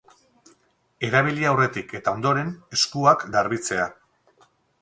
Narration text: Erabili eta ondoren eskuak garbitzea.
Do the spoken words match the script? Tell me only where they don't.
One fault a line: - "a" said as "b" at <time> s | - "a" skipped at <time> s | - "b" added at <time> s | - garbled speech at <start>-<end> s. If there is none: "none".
- "aurretik" added at 1.5 s